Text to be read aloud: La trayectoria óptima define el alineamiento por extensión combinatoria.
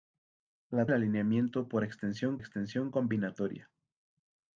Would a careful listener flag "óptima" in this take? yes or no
yes